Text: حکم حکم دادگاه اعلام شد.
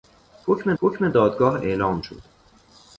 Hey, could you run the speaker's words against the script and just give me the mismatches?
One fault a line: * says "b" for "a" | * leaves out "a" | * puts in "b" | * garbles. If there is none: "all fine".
all fine